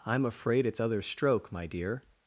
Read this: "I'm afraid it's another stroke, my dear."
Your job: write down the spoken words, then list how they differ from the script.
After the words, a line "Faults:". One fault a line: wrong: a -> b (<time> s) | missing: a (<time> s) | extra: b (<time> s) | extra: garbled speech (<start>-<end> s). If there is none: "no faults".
"I'm afraid it's other stroke, my dear."
Faults:
wrong: another -> other (0.8 s)